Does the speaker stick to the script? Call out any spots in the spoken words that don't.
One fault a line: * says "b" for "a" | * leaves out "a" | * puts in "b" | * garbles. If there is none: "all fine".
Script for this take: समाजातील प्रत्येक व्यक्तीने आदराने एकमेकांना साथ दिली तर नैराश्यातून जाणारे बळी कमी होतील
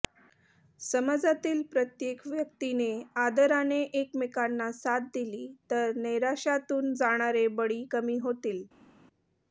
all fine